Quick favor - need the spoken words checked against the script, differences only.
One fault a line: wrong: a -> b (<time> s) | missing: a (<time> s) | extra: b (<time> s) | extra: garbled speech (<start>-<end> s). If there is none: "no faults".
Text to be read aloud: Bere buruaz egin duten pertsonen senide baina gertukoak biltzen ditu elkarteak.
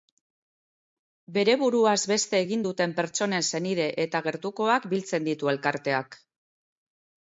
extra: beste (2.1 s)
wrong: baina -> eta (4.1 s)